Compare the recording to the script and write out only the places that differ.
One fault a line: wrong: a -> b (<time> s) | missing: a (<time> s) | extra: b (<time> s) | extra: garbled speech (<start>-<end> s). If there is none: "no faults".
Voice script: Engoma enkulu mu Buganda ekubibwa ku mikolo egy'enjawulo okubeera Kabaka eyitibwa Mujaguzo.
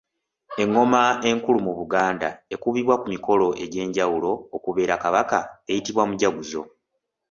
no faults